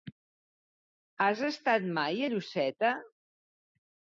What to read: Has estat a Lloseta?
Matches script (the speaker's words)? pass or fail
fail